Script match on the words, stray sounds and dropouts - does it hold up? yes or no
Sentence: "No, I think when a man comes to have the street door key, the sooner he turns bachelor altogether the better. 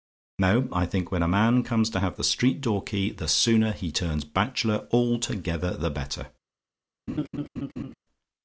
no